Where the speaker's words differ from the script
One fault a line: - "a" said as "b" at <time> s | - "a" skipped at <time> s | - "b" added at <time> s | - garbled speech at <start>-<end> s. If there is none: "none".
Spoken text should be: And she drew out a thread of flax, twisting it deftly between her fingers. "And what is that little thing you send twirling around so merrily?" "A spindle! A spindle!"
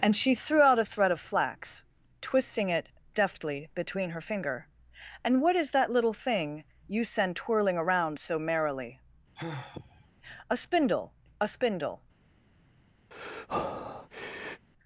- "drew" said as "threw" at 0.3 s
- "fingers" said as "finger" at 4.2 s